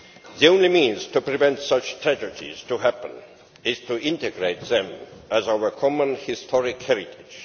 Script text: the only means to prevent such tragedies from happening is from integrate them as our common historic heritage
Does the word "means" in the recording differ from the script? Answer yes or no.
no